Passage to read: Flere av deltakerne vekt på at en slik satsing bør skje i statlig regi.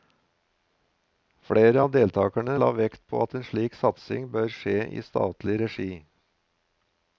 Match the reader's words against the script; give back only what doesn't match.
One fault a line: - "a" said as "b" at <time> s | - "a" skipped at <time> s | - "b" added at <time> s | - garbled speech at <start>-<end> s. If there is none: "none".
- "la" added at 2.6 s